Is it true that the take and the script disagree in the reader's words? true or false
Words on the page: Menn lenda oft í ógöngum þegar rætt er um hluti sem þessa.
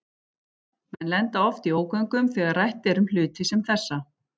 false